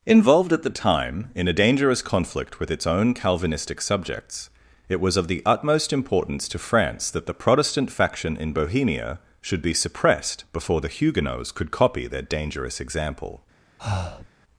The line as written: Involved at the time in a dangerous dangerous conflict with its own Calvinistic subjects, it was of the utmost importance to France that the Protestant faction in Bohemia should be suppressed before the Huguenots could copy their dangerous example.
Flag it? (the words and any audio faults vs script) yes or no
yes